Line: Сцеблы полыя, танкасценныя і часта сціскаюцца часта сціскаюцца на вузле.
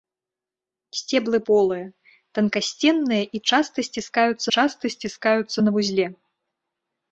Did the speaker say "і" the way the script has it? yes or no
yes